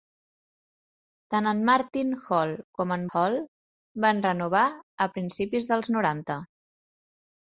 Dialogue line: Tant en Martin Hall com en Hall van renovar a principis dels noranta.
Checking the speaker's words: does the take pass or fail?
pass